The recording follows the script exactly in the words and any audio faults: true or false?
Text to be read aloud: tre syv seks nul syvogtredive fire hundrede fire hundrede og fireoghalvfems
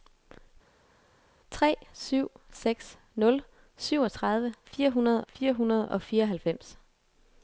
true